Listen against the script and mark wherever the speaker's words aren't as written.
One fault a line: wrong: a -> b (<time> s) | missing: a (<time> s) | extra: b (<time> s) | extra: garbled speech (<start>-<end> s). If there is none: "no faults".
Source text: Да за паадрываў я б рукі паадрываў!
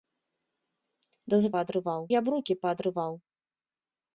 no faults